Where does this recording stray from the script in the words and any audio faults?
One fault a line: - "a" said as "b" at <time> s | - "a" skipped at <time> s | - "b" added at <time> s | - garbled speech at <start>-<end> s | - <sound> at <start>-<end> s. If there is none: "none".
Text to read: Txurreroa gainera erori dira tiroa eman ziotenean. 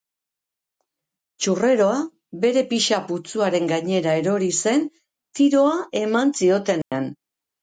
- "bere pixa putzuaren" added at 2.5 s
- "dira" said as "zen" at 4.6 s
- dropout at 6.8-6.9 s